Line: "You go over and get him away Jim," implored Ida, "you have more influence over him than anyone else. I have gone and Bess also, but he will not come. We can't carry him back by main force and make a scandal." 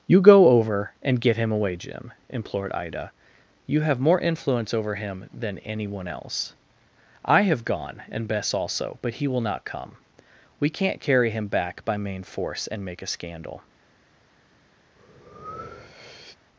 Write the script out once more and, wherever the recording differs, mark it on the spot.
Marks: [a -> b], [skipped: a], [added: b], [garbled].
"You go over and get him away Jim," implored Ida, "you have more influence over him than anyone else. I have gone and Bess also, but he will not come. We can't carry him back by main force and make a scandal."